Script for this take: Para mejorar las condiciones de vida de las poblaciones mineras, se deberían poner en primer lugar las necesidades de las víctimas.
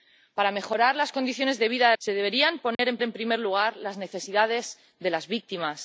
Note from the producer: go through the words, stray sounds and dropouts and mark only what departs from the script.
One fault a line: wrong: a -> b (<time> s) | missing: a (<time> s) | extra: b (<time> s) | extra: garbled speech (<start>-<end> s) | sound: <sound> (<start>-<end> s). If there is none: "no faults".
missing: las poblaciones mineras (2.0 s)
sound: dropout (2.7-2.8 s)
extra: en (3.0 s)